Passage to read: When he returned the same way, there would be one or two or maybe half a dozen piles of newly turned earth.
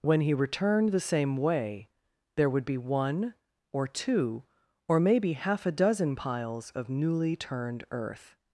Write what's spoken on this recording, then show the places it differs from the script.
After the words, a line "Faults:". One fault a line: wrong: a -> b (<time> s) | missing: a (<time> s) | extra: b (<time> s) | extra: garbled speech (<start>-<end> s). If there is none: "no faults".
When he returned the same way, there would be one or two or maybe half a dozen piles of newly turned earth.
Faults:
no faults